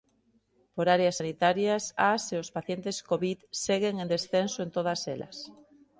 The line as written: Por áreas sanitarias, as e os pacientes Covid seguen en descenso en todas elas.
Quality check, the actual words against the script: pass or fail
pass